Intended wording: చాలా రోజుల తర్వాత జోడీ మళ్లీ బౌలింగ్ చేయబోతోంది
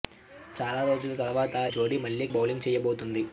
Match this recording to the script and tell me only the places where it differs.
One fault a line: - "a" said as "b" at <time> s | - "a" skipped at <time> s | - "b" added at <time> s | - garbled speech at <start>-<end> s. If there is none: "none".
none